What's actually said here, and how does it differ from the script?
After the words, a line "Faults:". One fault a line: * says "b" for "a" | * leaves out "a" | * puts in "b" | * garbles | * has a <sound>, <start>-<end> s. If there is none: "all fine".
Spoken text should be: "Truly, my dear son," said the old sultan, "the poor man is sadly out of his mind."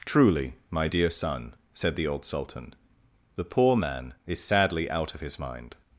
"Truly, my dear son," said the old sultan, "the poor man is sadly out of his mind."
Faults:
all fine